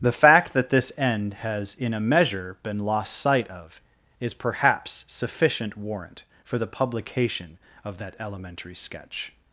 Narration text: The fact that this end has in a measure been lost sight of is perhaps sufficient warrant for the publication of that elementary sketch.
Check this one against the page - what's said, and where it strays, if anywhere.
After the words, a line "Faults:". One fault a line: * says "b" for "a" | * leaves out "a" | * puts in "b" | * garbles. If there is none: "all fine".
The fact that this end has in a measure been lost sight of is perhaps sufficient warrant for the publication of that elementary sketch.
Faults:
all fine